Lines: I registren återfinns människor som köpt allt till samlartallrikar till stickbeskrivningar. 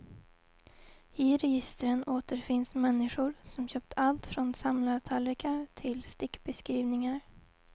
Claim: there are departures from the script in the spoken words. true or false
true